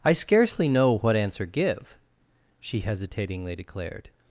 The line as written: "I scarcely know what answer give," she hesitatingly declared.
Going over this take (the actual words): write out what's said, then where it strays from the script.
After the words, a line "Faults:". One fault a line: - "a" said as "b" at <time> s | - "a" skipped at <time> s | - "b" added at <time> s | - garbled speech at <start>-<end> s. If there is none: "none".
"I scarcely know what answer give," she hesitatingly declared.
Faults:
none